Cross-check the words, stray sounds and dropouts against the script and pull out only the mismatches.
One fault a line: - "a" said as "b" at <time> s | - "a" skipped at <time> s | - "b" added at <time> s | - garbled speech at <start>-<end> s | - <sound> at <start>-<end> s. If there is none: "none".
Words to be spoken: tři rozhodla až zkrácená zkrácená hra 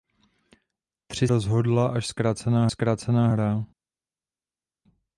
none